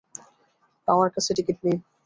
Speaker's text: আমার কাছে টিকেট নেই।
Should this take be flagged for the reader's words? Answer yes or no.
no